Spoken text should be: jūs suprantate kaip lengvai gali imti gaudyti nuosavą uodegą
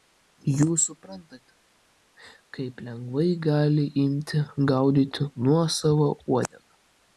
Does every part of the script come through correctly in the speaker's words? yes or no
yes